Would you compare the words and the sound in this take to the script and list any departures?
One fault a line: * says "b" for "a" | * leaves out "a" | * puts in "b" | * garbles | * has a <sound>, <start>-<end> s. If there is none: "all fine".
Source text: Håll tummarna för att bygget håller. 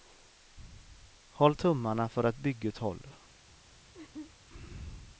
* has a laugh, 3.9-4.3 s